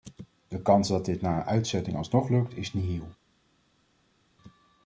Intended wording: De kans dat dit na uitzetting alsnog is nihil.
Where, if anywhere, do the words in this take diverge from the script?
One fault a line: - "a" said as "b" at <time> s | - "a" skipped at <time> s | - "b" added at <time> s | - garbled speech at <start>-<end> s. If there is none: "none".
- "lukt" added at 2.3 s